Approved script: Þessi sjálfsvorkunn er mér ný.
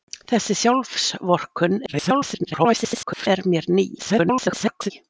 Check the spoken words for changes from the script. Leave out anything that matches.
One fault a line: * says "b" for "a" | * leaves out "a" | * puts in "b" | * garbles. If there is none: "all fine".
* garbles
* garbles